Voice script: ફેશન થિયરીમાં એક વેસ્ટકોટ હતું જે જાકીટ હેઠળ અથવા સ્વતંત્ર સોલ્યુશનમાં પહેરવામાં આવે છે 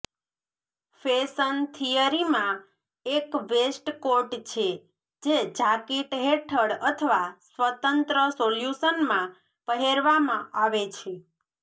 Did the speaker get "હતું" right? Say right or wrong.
wrong